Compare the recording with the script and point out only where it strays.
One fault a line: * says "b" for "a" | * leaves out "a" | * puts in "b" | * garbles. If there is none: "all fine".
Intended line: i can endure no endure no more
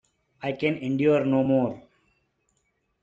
* leaves out "endure no"